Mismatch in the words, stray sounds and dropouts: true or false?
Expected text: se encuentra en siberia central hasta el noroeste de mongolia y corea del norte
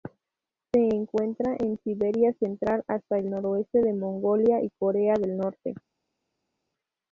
false